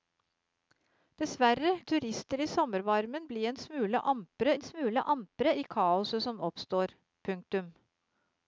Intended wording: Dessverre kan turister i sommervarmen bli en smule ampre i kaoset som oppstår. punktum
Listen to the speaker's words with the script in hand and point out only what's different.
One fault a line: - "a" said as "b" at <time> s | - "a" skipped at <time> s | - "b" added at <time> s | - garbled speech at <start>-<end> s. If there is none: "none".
- "kan" skipped at 1.7 s
- "en smule ampre" added at 4.6 s